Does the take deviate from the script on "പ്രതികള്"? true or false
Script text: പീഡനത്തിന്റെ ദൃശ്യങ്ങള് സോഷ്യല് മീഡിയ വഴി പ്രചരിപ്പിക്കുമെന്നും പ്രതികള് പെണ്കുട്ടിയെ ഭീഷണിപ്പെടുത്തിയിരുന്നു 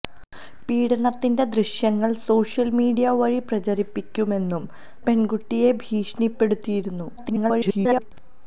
true